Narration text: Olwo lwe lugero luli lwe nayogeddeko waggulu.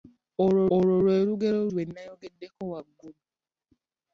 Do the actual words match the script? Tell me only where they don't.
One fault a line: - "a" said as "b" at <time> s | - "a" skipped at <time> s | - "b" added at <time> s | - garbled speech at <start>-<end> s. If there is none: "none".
- "olwo" added at 0.7 s
- "luli" skipped at 1.6 s